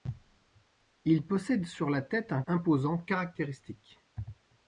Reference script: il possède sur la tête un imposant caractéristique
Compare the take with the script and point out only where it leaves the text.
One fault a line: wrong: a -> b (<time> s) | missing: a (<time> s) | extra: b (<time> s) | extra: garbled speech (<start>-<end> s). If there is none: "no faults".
no faults